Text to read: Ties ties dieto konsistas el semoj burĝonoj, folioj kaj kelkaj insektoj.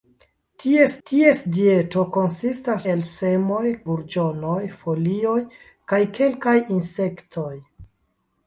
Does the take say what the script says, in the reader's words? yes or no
yes